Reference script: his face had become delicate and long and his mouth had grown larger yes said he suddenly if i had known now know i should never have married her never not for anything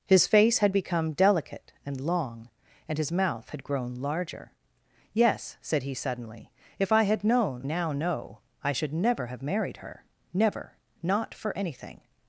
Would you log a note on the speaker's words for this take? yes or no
no